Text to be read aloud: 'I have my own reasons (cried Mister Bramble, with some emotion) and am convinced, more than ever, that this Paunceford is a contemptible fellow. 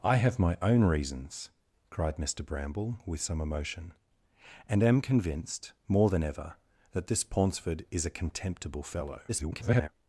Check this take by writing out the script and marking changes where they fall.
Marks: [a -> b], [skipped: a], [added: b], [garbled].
'I have my own reasons (cried Mister Bramble, with some emotion) and am convinced, more than ever, that this Paunceford is a contemptible fellow. [garbled]